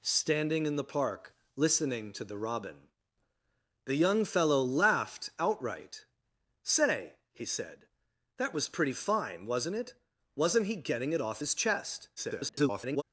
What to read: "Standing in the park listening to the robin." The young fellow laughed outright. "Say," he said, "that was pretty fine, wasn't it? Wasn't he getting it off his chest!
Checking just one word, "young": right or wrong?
right